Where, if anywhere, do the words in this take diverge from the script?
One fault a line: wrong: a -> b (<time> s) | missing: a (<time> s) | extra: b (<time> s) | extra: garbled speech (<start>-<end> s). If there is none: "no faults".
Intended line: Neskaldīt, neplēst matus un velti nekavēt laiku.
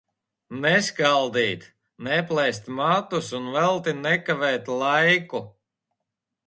no faults